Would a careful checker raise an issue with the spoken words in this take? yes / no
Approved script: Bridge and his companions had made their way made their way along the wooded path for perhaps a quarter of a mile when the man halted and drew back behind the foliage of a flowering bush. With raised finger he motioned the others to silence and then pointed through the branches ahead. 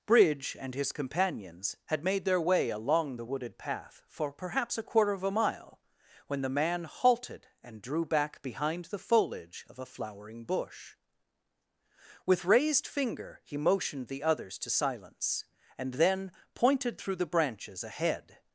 yes